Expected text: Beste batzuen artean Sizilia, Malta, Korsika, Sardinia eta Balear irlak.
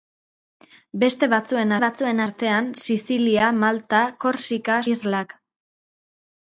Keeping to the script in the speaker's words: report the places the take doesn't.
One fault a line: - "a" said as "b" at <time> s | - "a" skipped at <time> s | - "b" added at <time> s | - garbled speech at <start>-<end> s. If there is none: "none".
- "batzuen" added at 1.8 s
- "Sardinia eta Balear" skipped at 4.8 s